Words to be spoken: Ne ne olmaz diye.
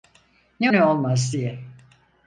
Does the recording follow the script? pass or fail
pass